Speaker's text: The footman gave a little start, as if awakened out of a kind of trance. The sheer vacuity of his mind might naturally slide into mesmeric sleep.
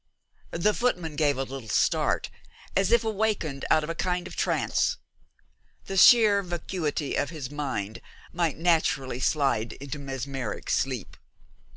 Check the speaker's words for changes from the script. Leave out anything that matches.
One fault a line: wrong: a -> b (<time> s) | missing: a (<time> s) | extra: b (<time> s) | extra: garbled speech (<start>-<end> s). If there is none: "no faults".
no faults